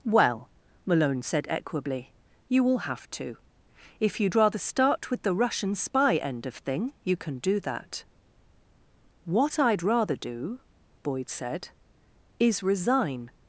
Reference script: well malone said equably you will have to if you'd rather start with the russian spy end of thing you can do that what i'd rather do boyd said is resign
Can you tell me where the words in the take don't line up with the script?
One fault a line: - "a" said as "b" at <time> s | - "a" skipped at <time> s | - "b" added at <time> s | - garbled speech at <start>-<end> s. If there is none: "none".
none